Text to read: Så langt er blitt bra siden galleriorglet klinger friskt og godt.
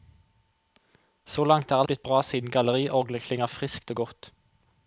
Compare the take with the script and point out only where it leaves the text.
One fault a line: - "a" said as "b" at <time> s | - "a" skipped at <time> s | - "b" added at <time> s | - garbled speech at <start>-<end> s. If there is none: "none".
none